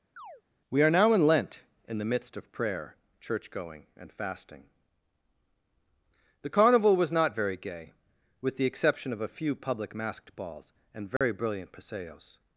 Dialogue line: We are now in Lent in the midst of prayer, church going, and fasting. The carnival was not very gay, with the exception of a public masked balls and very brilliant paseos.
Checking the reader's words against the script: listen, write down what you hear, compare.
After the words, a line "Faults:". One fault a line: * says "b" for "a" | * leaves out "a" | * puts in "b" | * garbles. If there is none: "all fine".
We are now in Lent in the midst of prayer, church going, and fasting. The carnival was not very gay, with the exception of a few public masked balls and very brilliant paseos.
Faults:
* puts in "few"